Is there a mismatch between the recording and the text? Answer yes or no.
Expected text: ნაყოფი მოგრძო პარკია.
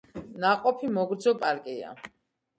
no